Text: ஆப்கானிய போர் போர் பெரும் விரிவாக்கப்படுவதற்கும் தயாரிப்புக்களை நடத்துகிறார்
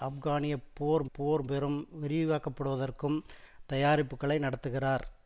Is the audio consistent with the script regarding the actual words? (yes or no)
yes